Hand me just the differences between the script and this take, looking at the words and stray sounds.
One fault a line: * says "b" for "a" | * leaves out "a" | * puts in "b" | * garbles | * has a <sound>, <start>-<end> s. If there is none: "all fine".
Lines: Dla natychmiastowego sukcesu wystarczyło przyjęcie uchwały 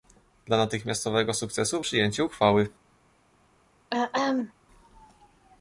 * leaves out "wystarczyło"
* has a throat clearing, 3.9-4.5 s